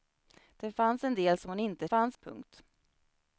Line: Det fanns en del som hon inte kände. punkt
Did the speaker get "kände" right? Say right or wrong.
wrong